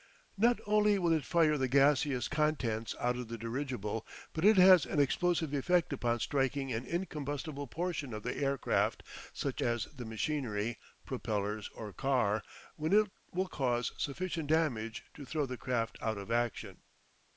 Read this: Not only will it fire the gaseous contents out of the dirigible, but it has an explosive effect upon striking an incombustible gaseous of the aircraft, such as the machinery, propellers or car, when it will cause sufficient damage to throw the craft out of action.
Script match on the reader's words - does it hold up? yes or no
no